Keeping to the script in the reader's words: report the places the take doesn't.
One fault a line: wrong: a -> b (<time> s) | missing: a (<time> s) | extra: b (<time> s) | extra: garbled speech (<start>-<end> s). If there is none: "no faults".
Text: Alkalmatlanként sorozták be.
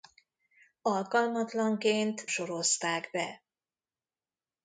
no faults